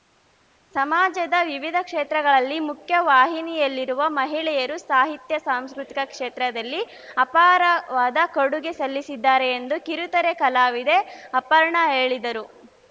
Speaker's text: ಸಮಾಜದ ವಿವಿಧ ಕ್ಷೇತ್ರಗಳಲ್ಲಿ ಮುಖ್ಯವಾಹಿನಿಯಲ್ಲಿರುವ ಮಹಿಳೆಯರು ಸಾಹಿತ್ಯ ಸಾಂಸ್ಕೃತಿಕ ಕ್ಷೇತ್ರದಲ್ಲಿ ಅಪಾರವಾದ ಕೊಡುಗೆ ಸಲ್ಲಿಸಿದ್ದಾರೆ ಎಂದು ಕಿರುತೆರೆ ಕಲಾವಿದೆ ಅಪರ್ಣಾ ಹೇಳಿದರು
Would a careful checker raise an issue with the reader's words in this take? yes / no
no